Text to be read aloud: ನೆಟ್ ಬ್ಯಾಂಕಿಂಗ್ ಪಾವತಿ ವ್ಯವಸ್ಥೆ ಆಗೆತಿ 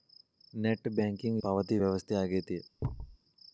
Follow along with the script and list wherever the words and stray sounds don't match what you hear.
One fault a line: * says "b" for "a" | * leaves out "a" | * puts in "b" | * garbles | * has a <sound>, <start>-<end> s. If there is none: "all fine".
* has a thud, 2.8-3.2 s